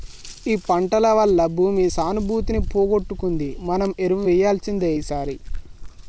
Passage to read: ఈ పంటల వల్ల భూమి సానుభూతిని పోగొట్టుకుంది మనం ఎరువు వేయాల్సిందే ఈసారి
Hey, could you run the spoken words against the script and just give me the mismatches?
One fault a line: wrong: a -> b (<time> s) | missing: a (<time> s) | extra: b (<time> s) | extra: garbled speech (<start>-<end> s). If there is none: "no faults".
no faults